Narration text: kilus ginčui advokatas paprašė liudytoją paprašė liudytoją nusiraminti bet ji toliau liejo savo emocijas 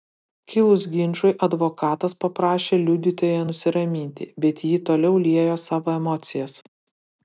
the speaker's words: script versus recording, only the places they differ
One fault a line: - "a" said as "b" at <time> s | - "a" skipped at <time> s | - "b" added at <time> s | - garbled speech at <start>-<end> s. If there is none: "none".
- "paprašė liudytoją" skipped at 3.5 s